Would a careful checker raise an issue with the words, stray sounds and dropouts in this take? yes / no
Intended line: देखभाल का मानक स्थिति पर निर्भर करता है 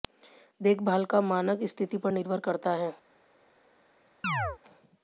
yes